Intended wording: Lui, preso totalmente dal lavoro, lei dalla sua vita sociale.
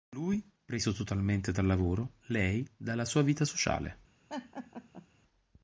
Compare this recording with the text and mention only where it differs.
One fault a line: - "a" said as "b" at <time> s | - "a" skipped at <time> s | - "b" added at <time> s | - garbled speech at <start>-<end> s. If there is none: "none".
none